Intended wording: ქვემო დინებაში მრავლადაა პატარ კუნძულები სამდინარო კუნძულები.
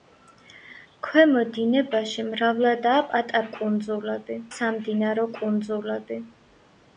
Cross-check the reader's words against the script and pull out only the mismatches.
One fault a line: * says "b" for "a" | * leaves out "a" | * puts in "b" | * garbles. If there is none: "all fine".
all fine